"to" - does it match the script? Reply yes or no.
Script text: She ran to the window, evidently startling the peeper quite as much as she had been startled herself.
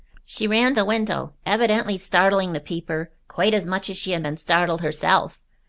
no